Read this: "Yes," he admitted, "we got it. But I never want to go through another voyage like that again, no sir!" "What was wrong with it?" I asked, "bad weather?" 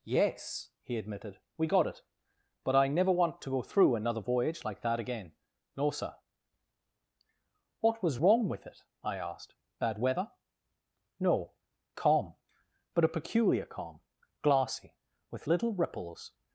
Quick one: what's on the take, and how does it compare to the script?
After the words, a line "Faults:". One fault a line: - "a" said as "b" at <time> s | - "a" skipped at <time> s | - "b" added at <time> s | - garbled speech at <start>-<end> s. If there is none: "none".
"Yes," he admitted, "we got it. But I never want to go through another voyage like that again, no sir!" "What was wrong with it?" I asked, "bad weather?" "No, calm, but a peculiar calm, glassy, with little ripples
Faults:
- "No calm but a peculiar calm glassy with little ripples" added at 11.2 s